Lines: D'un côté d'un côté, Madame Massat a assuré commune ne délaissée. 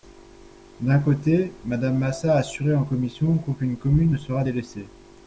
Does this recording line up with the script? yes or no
no